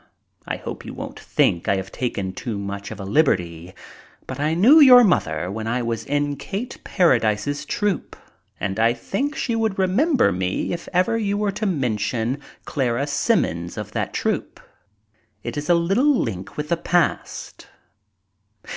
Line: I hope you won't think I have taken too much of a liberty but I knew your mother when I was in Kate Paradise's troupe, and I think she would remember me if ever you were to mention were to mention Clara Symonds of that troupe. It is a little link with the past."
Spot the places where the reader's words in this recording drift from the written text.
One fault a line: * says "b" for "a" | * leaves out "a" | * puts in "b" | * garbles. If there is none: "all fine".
* leaves out "were to mention"